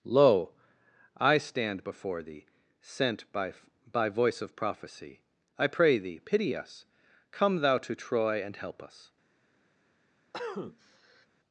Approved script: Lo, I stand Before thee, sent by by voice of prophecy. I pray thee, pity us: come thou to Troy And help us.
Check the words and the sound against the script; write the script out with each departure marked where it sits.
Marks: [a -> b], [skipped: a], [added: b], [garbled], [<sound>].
Lo, I stand Before thee, sent by by voice of prophecy. I pray thee, pity us: come thou to Troy And help us. [cough]